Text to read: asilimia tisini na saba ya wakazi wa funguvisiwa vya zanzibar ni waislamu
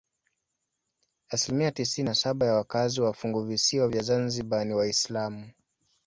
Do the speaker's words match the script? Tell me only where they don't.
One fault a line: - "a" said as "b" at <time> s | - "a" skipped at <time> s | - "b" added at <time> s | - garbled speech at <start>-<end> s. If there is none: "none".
none